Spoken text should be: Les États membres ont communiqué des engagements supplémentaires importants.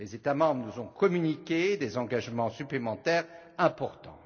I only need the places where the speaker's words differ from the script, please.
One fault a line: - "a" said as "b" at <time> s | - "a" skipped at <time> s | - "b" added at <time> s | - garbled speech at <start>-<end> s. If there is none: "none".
- "nous" added at 0.7 s